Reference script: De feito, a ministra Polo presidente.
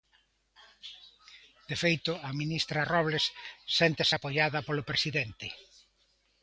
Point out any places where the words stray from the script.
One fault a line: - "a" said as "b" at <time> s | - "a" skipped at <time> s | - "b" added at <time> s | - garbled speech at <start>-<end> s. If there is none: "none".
- "Robles séntese apoiada" added at 2.9 s